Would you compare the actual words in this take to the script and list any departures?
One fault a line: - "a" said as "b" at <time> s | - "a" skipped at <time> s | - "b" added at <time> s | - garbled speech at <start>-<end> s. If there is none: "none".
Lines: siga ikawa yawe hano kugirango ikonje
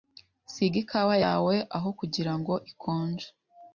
- "hano" said as "aho" at 1.8 s